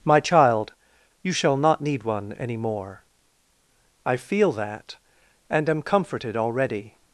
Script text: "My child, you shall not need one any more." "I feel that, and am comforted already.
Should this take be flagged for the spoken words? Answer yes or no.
no